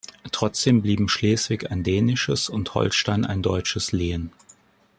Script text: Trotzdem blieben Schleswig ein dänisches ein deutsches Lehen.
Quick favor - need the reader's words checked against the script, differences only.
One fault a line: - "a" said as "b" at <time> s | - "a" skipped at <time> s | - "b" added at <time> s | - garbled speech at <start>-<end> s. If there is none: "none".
- "und Holstein" added at 2.5 s